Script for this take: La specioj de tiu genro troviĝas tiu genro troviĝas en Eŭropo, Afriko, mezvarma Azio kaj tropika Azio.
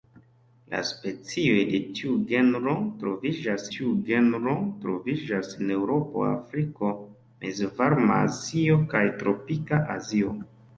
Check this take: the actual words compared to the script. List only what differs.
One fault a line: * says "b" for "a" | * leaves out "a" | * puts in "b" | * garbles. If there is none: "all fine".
all fine